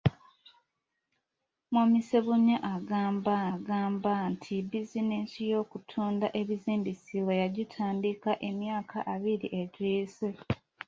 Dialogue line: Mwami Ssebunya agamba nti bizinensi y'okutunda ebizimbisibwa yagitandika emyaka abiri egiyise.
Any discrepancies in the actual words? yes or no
yes